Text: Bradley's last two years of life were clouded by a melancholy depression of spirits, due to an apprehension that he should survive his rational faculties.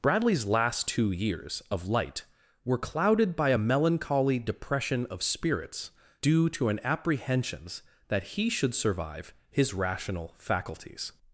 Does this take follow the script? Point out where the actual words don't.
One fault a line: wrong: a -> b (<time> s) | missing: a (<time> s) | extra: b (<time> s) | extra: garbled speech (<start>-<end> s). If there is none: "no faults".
wrong: life -> light (1.9 s)
wrong: apprehension -> apprehensions (6.8 s)